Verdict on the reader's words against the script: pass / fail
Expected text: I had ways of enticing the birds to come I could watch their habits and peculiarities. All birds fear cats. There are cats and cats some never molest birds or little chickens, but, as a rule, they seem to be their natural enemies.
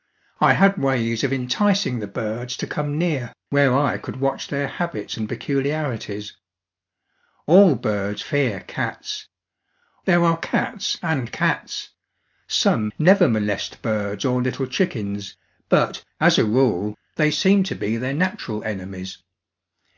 fail